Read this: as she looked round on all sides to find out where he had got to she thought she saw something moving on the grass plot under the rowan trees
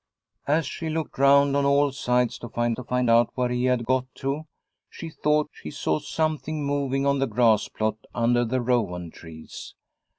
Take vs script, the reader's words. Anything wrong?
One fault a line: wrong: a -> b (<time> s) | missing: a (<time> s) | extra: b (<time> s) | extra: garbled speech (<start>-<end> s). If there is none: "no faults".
extra: to find (2.7 s)